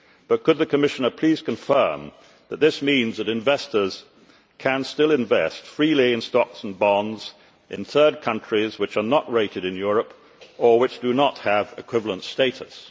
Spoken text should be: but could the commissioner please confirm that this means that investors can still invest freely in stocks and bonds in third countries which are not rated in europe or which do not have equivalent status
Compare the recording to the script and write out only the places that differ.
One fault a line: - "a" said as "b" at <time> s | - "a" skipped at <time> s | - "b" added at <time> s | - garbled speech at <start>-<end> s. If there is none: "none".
none